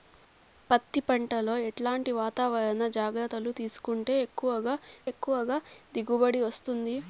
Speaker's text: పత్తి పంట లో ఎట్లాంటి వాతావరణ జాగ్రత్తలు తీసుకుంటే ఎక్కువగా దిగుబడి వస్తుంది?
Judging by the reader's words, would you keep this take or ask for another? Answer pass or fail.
fail